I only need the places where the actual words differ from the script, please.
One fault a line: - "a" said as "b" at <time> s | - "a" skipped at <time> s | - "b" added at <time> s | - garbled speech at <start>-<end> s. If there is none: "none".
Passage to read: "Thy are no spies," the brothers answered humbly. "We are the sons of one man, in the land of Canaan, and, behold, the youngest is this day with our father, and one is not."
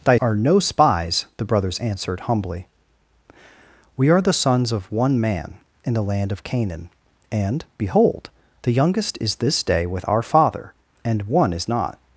none